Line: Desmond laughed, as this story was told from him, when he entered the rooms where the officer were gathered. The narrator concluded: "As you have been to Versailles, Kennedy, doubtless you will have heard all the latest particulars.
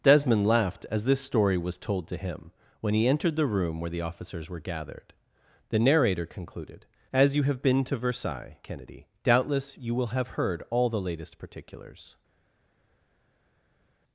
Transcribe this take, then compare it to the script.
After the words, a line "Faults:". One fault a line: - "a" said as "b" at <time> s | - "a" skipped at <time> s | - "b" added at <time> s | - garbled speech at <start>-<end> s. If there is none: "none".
Desmond laughed, as this story was told to him, when he entered the room where the officers were gathered. The narrator concluded: "As you have been to Versailles, Kennedy, doubtless you will have heard all the latest particulars.
Faults:
- "from" said as "to" at 2.1 s
- "rooms" said as "room" at 3.5 s
- "officer" said as "officers" at 4.0 s